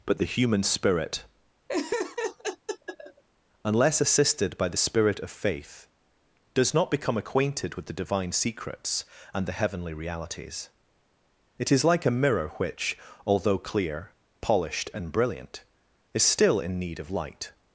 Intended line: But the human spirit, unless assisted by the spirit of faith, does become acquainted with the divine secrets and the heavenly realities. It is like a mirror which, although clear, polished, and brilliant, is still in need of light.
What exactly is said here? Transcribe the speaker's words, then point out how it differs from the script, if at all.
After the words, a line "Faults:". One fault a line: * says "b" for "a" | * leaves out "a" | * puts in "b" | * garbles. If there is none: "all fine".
But the human spirit, unless assisted by the spirit of faith, does not become acquainted with the divine secrets and the heavenly realities. It is like a mirror which, although clear, polished, and brilliant, is still in need of light.
Faults:
* puts in "not"